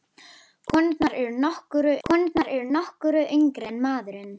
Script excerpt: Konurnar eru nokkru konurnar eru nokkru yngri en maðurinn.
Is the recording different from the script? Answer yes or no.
no